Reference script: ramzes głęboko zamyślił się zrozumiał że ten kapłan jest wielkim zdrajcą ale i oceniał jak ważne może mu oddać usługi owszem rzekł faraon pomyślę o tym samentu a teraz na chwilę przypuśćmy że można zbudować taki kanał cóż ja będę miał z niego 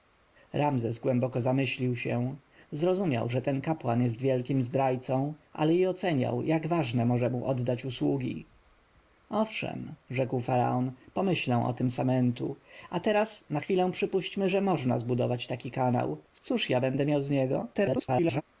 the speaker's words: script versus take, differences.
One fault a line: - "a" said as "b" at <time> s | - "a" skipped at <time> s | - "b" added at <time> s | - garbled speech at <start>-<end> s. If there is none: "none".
- garbled speech at 17.7-18.4 s